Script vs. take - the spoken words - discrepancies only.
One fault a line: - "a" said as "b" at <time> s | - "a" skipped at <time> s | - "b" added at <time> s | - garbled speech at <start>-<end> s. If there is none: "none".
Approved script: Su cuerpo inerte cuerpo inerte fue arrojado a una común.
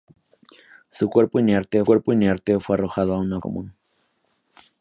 none